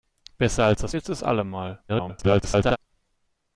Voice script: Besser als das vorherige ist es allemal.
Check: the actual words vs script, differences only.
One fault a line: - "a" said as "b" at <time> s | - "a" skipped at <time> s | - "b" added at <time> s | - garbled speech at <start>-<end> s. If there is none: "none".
- "vorherige" skipped at 0.9 s
- garbled speech at 1.9-2.8 s